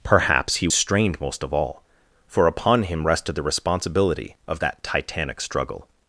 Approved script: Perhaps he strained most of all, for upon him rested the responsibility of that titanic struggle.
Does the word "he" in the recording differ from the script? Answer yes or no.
no